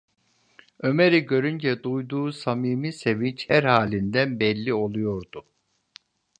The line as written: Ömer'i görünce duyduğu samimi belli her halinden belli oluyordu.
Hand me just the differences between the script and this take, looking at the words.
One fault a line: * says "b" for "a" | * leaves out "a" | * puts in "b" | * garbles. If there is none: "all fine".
* says "sevinç" for "belli"